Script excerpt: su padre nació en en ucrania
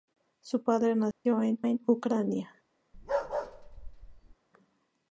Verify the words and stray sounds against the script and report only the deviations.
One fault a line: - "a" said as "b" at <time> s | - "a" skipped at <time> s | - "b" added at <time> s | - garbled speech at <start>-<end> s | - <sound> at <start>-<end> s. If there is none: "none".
- dropout at 1.1-1.3 s
- bark at 2.9-4.4 s